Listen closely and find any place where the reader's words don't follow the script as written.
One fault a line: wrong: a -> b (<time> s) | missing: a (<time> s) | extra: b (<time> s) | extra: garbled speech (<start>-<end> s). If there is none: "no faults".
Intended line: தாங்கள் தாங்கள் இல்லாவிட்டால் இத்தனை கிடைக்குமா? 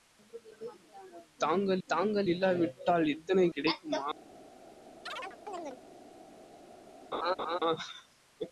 no faults